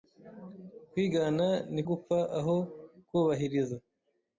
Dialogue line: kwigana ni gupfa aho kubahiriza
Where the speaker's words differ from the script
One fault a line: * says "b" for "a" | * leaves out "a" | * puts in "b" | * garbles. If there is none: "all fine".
all fine